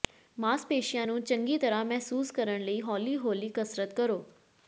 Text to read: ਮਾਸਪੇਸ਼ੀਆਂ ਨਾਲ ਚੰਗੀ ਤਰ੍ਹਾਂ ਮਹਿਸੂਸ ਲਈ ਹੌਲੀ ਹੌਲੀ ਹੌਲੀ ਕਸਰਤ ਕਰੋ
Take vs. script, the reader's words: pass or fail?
fail